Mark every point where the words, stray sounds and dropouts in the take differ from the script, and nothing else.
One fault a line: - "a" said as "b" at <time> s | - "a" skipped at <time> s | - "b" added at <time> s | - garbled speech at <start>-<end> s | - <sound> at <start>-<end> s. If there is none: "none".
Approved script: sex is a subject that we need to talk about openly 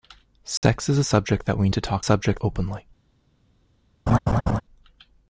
- dropout at 0.6-0.6 s
- "need" skipped at 1.7 s
- "about" said as "subject" at 2.0 s
- laugh at 4.1-4.6 s